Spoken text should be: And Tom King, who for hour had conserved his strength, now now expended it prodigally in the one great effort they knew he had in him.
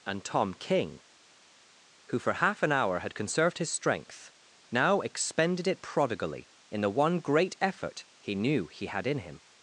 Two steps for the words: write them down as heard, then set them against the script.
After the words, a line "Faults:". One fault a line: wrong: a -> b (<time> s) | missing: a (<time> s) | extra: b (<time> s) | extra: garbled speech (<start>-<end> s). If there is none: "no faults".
And Tom King, who for half an hour had conserved his strength, now expended it prodigally in the one great effort he knew he had in him.
Faults:
extra: half an (2.3 s)
missing: now (5.0 s)
wrong: they -> he (8.2 s)